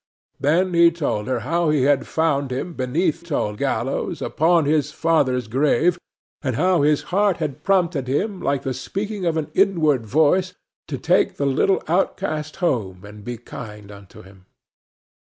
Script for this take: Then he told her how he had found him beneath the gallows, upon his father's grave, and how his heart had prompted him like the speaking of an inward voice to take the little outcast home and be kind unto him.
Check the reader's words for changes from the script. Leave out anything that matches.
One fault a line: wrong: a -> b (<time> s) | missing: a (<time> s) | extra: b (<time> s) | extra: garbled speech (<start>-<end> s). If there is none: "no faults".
wrong: the -> told (3.2 s)